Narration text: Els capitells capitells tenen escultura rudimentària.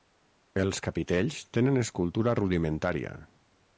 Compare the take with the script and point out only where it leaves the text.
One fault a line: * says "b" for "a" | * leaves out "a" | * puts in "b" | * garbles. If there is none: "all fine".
* leaves out "capitells"